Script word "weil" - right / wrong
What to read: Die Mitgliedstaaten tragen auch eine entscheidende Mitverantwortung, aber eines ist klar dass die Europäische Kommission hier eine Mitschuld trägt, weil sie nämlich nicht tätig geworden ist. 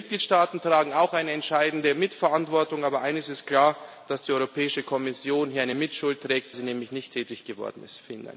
wrong